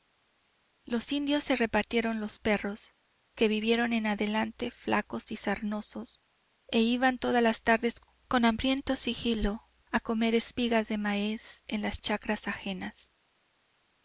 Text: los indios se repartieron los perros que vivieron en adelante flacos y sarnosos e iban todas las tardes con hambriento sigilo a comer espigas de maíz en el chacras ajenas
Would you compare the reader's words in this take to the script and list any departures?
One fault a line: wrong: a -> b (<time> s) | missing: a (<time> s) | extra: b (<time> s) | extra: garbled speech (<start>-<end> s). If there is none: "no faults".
wrong: el -> las (11.8 s)